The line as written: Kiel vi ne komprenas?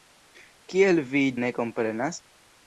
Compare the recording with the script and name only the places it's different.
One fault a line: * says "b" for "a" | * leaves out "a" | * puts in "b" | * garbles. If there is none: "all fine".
all fine